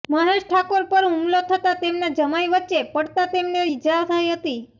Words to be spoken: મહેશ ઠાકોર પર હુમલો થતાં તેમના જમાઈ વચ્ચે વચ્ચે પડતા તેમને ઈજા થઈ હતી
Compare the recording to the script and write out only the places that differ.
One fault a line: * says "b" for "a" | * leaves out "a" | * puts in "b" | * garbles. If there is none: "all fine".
* leaves out "વચ્ચે"